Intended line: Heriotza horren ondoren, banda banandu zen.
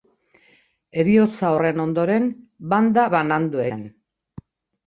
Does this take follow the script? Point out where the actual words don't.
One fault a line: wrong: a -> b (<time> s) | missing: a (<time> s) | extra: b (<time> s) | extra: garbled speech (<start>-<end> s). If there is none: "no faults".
no faults